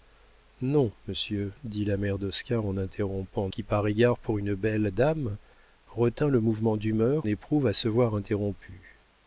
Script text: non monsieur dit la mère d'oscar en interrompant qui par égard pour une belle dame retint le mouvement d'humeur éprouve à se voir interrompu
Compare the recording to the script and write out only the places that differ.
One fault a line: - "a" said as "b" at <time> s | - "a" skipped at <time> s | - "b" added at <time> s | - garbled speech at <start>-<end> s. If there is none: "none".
none